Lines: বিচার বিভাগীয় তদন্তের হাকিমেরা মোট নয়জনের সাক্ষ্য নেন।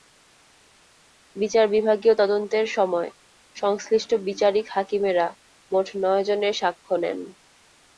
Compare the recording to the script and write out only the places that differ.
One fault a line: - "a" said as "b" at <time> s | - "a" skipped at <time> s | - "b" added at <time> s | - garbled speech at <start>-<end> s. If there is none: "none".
- "সময় সংশ্লিষ্ট বিচারিক" added at 2.7 s